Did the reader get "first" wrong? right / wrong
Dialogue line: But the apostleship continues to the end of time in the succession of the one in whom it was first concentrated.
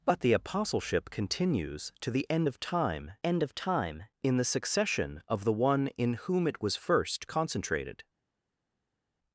right